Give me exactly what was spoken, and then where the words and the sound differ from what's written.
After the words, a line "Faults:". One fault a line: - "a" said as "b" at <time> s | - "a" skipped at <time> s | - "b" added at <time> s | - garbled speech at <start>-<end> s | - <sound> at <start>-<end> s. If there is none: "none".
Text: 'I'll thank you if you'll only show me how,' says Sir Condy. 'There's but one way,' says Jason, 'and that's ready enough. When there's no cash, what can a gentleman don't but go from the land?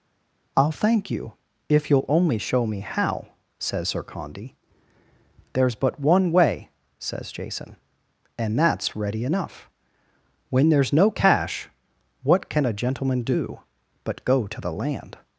'I'll thank you if you'll only show me how,' says Sir Condy. 'There's but one way,' says Jason, 'and that's ready enough. When there's no cash, what can a gentleman do but go to the land?
Faults:
- "don't" said as "do" at 13.2 s
- "from" said as "to" at 14.5 s